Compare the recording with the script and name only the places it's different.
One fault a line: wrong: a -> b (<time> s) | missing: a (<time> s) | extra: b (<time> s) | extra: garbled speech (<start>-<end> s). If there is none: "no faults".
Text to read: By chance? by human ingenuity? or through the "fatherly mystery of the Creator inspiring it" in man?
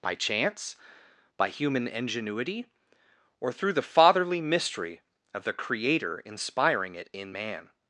no faults